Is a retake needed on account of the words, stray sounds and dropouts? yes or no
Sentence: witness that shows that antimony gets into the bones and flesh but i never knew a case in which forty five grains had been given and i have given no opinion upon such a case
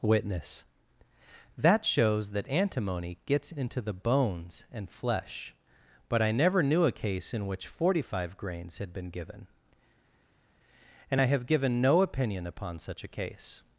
no